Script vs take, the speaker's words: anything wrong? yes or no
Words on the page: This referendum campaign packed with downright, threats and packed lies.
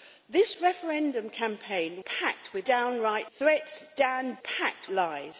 no